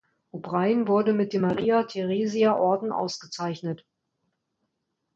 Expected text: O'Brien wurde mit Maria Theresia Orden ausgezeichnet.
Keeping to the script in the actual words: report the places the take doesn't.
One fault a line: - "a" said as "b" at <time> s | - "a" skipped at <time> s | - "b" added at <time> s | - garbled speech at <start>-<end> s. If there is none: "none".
- "dem" added at 1.3 s